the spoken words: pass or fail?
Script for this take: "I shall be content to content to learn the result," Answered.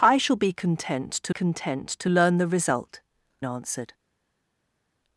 pass